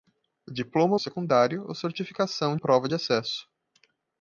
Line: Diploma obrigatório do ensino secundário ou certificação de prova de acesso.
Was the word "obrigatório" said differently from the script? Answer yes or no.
yes